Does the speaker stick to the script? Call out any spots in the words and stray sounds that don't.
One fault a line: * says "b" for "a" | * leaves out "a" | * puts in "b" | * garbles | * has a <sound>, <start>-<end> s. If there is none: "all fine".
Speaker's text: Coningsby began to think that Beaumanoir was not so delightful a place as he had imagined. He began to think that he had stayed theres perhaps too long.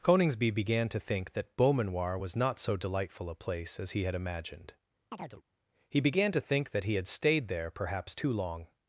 * has a chirp, 5.1-5.4 s
* says "there" for "theres"